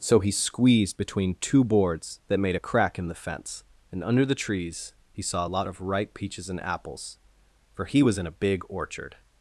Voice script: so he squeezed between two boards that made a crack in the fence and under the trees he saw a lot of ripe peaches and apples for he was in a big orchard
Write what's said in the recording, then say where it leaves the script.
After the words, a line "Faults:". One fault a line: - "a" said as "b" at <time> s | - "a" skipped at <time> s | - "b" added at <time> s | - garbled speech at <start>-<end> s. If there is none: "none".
so he squeezed between two boards that made a crack in the fence and under the trees he saw a lot of ripe peaches and apples for he was in a big orchard
Faults:
none